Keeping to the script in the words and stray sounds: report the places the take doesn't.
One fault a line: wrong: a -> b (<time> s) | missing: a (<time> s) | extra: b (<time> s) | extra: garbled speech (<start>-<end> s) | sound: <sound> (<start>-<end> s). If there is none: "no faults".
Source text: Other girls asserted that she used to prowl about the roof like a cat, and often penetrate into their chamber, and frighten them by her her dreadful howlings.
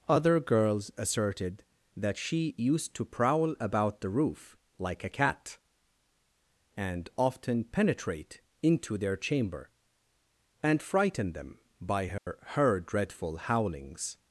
sound: dropout (12.2-12.3 s)